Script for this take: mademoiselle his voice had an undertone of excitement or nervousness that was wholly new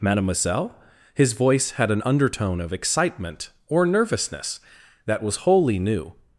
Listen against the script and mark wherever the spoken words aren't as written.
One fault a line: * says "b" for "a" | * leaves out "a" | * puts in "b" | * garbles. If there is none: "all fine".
all fine